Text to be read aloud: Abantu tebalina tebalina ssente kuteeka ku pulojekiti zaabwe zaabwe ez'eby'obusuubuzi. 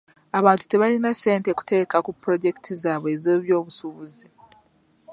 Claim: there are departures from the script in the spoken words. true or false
true